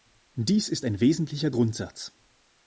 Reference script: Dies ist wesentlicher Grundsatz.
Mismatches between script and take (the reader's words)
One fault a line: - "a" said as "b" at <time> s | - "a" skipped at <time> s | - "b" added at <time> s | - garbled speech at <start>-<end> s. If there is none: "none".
- "ein" added at 0.8 s